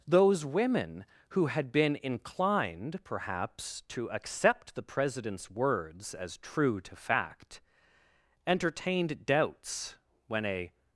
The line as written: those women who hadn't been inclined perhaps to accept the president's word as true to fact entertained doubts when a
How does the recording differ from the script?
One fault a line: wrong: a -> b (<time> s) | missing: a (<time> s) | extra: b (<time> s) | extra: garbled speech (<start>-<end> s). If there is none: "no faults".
wrong: hadn't -> had (1.5 s)
wrong: word -> words (5.5 s)